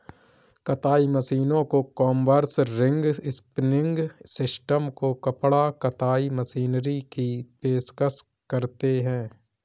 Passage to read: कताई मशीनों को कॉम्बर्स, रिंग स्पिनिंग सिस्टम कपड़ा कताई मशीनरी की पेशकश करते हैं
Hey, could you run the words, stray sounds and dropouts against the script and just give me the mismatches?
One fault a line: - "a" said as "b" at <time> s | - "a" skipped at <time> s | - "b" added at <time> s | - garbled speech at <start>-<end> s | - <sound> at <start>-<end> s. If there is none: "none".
- "को" added at 4.9 s